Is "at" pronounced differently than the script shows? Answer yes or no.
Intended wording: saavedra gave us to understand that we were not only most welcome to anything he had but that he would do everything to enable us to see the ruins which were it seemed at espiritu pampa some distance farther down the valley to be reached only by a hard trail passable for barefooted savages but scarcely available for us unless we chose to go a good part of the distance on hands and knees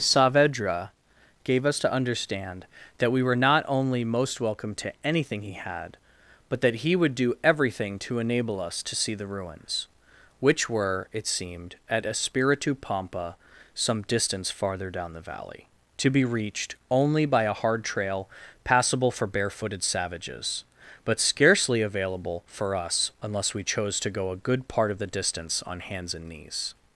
no